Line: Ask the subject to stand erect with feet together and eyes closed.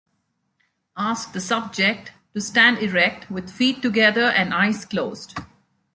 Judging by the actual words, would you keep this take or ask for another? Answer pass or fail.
pass